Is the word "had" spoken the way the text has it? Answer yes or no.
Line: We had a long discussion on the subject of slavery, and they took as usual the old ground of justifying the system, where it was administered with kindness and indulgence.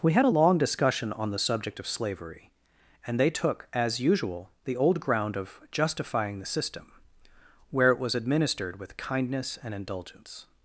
yes